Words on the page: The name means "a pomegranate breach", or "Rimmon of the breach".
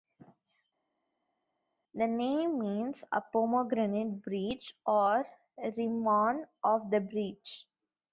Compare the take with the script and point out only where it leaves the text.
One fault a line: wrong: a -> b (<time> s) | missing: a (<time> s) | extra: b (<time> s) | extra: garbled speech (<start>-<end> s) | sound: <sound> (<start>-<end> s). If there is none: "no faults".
no faults